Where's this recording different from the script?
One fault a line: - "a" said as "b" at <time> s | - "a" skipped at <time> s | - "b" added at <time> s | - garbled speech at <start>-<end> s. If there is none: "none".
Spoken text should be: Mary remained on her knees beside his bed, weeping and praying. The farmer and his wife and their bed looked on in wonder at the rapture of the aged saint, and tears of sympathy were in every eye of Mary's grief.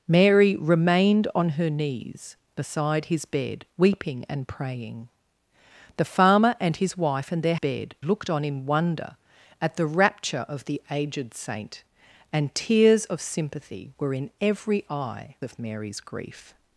none